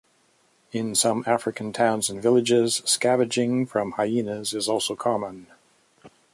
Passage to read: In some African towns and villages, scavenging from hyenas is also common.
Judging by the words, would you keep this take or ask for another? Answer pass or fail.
pass